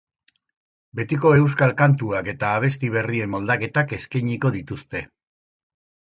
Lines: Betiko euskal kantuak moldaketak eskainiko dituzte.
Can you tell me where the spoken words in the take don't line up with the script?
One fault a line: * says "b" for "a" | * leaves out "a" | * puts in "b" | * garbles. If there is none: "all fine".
* puts in "eta abesti berrien"